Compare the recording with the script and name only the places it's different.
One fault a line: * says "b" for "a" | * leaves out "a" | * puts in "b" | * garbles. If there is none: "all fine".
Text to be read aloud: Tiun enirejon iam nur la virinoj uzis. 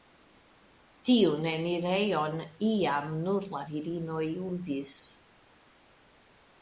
all fine